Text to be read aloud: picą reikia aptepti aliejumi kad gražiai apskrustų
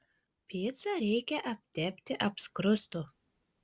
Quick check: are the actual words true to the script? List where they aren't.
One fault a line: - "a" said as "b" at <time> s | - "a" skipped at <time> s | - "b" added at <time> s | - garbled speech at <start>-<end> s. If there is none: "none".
- "aliejumi kad gražiai" skipped at 2.2 s